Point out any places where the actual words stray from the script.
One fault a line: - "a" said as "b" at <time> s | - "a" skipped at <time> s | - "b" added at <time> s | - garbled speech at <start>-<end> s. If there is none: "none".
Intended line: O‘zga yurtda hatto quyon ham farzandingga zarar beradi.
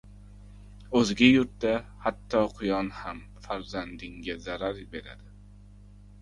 none